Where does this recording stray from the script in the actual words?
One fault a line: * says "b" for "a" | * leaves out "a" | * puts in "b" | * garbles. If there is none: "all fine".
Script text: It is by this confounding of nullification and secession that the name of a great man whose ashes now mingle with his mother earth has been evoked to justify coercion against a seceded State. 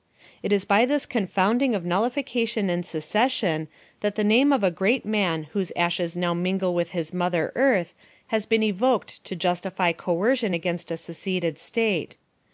all fine